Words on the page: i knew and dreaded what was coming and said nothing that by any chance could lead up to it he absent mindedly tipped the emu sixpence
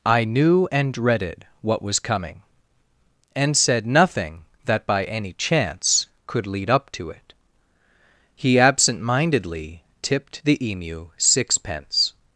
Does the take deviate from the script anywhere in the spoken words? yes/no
no